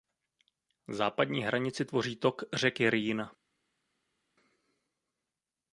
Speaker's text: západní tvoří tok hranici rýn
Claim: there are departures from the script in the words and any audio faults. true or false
true